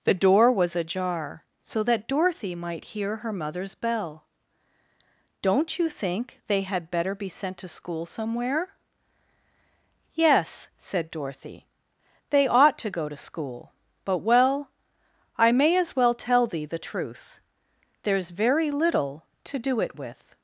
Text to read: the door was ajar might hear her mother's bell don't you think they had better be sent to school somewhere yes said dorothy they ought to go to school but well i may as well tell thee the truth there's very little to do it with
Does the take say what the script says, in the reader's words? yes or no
no